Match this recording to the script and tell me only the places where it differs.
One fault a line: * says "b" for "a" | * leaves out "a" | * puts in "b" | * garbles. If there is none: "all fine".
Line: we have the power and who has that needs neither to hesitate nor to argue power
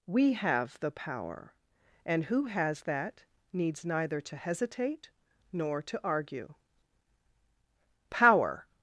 all fine